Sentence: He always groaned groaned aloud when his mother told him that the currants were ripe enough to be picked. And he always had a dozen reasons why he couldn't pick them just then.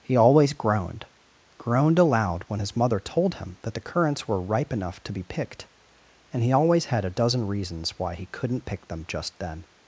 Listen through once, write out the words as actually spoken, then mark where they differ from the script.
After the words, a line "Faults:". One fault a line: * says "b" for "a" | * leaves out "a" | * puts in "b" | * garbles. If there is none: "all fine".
He always groaned groaned aloud when his mother told him that the currants were ripe enough to be picked. And he always had a dozen reasons why he couldn't pick them just then.
Faults:
all fine